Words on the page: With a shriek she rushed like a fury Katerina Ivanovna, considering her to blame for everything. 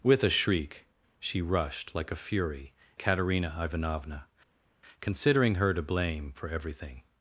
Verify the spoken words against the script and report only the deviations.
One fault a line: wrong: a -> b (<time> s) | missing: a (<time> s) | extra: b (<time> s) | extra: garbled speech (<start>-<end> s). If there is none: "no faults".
no faults